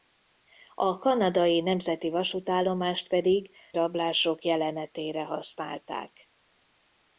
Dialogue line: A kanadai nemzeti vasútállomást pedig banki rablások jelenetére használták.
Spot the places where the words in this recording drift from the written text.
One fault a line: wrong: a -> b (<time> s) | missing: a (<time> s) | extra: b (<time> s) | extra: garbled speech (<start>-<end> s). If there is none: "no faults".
missing: banki (3.5 s)